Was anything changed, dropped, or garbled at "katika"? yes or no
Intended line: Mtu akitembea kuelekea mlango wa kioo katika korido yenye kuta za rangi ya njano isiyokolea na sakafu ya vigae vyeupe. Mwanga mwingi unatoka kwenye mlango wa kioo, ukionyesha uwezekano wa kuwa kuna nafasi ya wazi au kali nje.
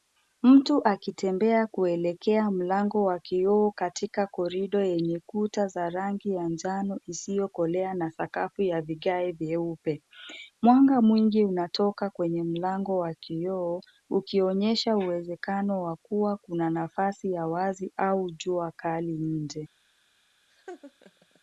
no